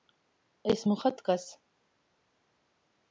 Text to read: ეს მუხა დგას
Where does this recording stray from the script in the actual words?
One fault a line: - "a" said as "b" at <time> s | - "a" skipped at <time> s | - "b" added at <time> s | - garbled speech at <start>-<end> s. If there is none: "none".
none